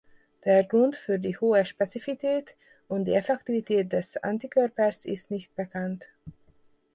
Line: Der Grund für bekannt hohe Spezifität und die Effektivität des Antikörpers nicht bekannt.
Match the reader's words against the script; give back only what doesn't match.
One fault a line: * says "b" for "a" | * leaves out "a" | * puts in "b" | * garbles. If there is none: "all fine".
* says "die" for "bekannt"
* puts in "ist"